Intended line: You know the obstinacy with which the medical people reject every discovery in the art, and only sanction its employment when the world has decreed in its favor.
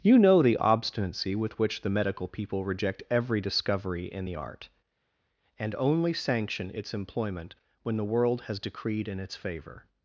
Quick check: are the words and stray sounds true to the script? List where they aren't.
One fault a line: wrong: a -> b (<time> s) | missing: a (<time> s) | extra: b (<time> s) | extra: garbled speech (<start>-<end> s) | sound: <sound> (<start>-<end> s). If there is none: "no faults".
no faults